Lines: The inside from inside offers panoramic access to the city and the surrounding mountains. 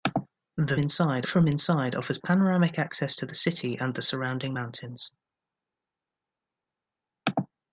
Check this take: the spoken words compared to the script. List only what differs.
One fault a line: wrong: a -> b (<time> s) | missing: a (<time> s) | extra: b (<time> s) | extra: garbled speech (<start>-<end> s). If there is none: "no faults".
no faults